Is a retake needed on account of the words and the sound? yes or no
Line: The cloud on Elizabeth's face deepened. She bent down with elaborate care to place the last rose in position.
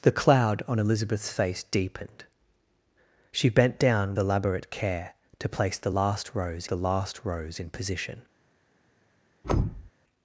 yes